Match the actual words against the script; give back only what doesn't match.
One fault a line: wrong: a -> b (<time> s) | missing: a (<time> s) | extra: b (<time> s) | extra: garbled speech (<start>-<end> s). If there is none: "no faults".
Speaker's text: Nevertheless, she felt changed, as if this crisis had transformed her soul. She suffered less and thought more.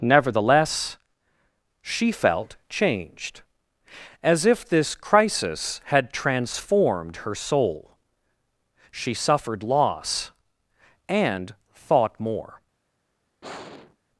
wrong: less -> loss (9.6 s)